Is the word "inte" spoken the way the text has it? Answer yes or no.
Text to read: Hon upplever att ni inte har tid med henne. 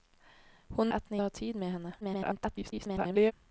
no